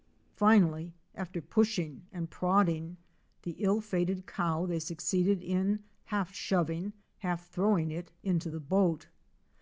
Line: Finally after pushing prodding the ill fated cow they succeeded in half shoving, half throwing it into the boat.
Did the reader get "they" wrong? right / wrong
right